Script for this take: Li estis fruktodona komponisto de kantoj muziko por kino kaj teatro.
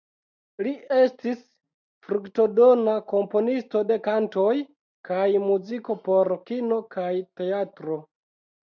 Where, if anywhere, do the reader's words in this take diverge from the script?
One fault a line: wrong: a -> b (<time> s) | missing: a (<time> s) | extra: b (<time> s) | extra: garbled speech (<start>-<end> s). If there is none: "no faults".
extra: kaj (5.1 s)